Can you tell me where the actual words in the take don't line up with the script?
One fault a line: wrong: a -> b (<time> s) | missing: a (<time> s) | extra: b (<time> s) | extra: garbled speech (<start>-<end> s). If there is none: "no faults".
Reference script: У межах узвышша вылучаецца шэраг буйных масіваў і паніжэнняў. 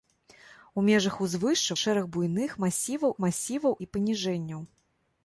missing: вылучаецца (1.8 s)
extra: масіваў (3.2 s)